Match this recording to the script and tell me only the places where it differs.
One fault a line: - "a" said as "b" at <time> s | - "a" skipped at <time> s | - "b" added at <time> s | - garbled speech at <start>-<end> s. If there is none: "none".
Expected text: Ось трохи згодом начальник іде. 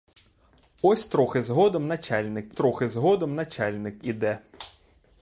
- "трохи згодом начальник" added at 2.5 s